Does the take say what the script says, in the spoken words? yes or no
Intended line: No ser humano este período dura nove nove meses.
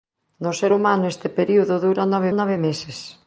yes